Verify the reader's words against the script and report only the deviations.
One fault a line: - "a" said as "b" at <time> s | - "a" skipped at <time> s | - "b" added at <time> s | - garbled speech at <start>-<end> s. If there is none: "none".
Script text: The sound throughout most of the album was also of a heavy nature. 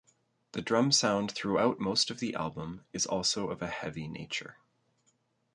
- "drum" added at 0.6 s
- "was" said as "is" at 2.9 s